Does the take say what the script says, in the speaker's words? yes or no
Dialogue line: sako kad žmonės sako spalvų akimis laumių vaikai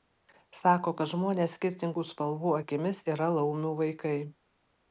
no